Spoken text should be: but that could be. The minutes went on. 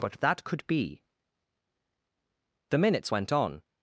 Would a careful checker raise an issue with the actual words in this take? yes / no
no